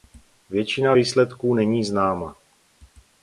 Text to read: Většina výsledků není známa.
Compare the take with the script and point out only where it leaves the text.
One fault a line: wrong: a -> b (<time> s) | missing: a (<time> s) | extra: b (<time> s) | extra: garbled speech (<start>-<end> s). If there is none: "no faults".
no faults